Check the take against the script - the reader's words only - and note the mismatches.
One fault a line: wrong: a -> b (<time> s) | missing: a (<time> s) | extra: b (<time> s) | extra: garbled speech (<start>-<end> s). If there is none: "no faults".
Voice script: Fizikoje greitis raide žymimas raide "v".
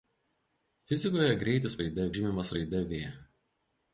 no faults